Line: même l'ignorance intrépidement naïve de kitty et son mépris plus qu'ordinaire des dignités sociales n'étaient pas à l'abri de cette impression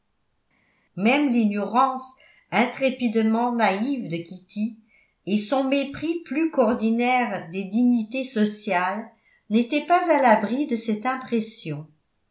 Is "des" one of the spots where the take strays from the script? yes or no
no